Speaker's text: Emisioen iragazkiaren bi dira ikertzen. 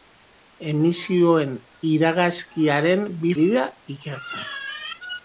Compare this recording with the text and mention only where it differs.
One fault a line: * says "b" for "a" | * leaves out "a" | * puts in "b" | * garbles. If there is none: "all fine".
all fine